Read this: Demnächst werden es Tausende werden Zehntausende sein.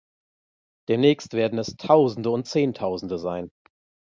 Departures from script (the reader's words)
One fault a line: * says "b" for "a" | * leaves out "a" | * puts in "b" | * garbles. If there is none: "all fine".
* says "und" for "werden"